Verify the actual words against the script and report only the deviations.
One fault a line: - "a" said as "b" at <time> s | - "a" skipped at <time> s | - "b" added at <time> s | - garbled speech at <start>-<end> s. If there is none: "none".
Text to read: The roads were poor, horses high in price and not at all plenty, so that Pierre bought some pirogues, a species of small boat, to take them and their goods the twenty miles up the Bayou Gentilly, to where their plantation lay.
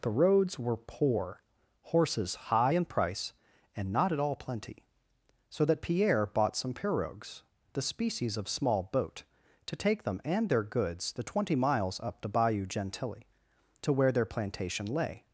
- "a" said as "the" at 7.7 s